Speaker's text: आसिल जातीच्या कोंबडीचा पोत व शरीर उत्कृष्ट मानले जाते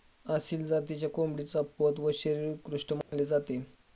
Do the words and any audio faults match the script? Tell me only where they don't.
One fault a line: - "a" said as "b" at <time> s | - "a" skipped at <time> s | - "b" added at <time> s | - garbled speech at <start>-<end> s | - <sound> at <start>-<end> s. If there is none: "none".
- dropout at 3.0-3.1 s